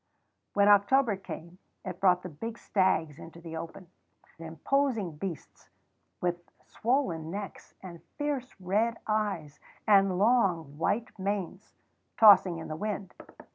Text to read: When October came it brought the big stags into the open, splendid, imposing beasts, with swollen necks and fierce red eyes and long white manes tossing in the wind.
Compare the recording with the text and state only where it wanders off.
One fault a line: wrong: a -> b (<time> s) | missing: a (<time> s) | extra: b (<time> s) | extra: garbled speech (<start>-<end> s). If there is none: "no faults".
missing: splendid (3.9 s)